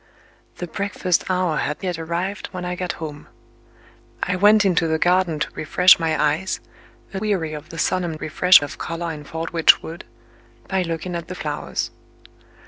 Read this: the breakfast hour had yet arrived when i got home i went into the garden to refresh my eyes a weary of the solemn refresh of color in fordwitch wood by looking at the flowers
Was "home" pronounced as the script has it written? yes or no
yes